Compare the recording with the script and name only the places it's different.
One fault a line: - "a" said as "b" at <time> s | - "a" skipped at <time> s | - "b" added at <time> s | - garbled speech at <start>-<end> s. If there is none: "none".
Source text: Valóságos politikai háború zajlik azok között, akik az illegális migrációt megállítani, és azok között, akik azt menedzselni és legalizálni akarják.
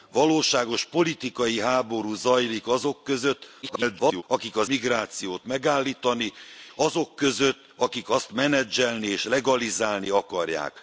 - garbled speech at 3.6-4.2 s
- "illegális" skipped at 4.7 s
- "és" skipped at 6.3 s